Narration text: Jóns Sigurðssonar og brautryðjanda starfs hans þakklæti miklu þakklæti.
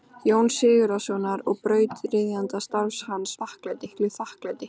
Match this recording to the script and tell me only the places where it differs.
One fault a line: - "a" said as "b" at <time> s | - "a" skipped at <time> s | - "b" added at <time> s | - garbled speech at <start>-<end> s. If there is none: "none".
none